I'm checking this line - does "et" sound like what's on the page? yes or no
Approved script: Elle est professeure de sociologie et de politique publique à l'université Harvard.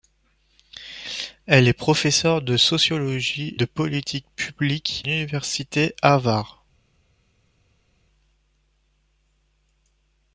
no